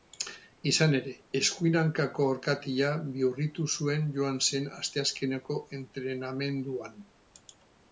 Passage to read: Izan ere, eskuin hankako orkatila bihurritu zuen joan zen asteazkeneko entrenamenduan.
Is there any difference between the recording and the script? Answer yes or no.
no